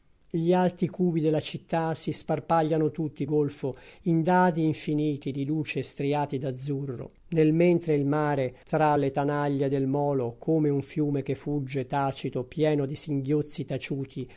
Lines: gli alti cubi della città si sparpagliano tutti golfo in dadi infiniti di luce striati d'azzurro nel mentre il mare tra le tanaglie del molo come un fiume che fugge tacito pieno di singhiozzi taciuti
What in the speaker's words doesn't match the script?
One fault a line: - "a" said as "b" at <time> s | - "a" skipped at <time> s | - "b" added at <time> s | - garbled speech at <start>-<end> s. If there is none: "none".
none